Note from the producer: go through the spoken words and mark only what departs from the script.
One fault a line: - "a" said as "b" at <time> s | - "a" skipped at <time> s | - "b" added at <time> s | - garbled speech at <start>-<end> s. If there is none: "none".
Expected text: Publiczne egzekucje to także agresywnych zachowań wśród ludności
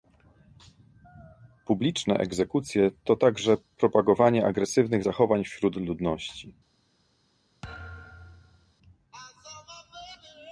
- "propagowanie" added at 3.8 s